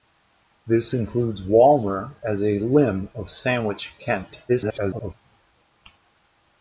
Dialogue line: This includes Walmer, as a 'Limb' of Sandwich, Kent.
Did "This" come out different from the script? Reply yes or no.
no